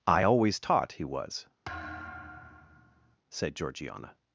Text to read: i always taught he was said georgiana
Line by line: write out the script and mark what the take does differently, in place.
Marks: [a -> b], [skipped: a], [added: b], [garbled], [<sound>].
i always taught he was [thud] said georgiana